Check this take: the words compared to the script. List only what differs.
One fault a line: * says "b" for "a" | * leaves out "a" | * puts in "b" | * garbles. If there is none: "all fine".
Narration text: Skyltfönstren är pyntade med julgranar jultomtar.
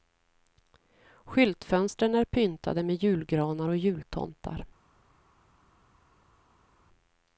* puts in "och"